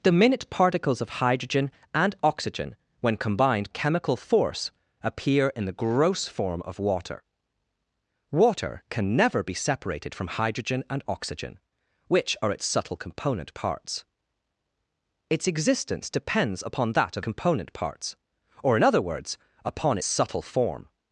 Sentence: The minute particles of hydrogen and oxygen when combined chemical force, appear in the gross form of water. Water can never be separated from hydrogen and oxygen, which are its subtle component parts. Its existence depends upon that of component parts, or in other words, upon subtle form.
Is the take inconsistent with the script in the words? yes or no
no